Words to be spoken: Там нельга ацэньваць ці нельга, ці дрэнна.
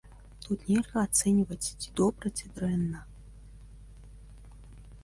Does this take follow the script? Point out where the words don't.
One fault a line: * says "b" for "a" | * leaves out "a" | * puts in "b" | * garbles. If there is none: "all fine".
* says "Тут" for "Там"
* says "добра" for "нельга"